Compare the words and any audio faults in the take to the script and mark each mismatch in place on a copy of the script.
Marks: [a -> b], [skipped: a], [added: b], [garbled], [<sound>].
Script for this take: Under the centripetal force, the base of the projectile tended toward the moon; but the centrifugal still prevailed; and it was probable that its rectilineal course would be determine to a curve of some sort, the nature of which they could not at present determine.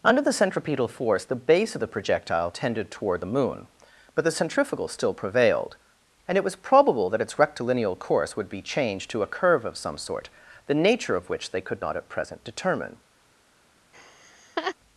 Under the centripetal force, the base of the projectile tended toward the moon; but the centrifugal still prevailed; and it was probable that its rectilineal course would be [determine -> changed] to a curve of some sort, the nature of which they could not at present determine. [laugh]